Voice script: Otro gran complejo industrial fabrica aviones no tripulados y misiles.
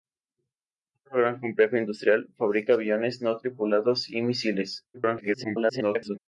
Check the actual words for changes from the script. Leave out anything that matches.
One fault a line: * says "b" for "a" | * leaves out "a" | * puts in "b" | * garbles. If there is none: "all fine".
* garbles